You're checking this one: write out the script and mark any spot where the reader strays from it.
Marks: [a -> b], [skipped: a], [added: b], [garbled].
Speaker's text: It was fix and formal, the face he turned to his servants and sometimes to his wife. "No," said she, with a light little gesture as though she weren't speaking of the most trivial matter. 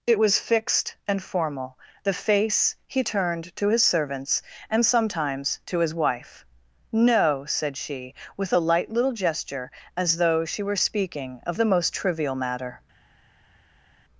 It was [fix -> fixed] and formal, the face he turned to his servants and sometimes to his wife. "No," said she, with a light little gesture as though she [weren't -> were] speaking of the most trivial matter.